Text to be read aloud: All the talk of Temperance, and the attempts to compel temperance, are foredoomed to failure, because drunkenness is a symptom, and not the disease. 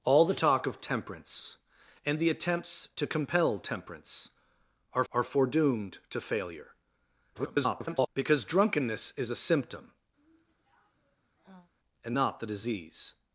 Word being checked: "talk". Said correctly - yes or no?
yes